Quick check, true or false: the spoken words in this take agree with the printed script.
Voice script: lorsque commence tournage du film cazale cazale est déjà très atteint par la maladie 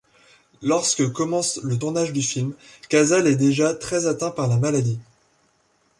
false